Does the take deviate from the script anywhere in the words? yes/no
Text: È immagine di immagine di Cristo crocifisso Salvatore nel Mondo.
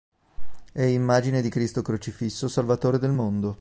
yes